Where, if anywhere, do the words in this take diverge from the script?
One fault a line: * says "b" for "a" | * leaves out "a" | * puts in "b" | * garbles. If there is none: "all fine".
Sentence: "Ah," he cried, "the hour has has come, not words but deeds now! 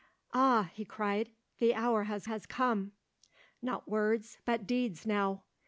all fine